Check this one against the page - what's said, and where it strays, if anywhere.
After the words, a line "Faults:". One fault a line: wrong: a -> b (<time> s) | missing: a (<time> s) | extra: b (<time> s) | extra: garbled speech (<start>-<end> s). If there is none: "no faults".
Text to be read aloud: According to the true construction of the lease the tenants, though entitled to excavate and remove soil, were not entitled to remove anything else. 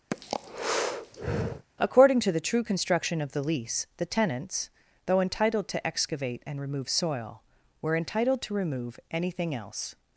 According to the true construction of the lease the tenants, though entitled to excavate and remove soil, were entitled to remove anything else.
Faults:
missing: not (8.0 s)